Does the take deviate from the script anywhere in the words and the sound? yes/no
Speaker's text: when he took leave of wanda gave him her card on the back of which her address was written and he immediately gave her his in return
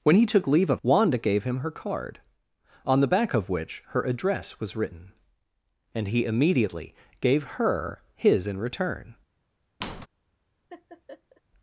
yes